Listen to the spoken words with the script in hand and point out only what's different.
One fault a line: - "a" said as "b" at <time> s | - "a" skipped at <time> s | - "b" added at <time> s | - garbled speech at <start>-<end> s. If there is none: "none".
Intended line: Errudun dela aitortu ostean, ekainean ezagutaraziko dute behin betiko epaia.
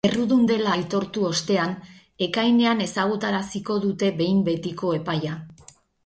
none